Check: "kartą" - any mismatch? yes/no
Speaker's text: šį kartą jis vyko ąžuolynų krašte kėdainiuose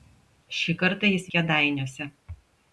no